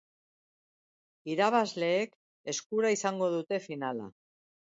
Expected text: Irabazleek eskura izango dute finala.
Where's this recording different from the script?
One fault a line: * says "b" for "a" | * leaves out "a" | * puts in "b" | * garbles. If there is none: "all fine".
all fine